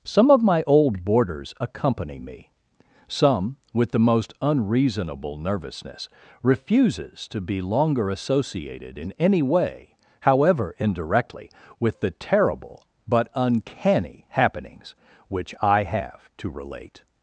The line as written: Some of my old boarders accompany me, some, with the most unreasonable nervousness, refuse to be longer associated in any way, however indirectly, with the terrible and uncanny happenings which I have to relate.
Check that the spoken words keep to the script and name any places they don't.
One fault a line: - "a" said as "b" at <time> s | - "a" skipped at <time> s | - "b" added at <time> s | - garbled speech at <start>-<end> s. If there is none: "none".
- "refuse" said as "refuses" at 6.4 s
- "and" said as "but" at 13.1 s